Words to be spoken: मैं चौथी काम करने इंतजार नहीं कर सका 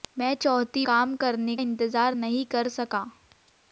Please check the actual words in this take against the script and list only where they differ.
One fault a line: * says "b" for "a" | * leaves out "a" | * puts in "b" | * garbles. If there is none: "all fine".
all fine